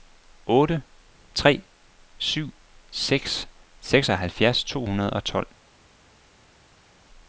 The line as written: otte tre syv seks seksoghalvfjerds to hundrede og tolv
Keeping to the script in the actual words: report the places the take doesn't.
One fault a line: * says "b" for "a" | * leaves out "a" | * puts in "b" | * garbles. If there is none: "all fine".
all fine